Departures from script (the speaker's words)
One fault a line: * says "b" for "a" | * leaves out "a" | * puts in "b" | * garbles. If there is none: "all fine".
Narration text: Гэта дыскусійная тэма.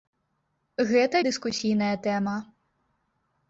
all fine